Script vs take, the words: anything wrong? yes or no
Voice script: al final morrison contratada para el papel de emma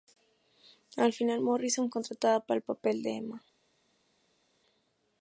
no